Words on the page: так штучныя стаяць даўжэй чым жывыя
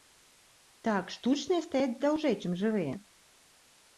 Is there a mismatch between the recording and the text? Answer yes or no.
no